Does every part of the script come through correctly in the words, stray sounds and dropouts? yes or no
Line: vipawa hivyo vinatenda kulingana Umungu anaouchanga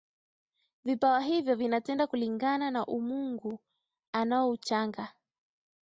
no